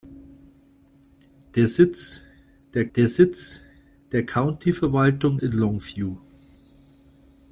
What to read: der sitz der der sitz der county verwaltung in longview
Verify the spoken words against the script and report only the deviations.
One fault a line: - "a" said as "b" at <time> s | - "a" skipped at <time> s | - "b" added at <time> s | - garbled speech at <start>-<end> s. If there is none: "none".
none